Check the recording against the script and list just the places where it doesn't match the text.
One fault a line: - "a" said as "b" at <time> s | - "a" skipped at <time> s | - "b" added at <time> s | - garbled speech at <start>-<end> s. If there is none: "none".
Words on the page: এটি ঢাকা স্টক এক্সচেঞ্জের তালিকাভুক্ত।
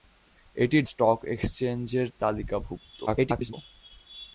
- "ঢাকা" skipped at 0.8 s
- garbled speech at 3.1-3.5 s